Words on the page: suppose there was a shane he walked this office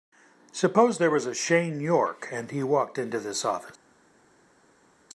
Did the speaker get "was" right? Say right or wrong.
right